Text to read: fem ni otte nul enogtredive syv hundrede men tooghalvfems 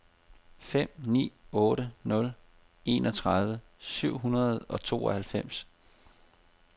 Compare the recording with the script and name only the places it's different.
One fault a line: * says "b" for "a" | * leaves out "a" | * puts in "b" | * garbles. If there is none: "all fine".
* says "og" for "men"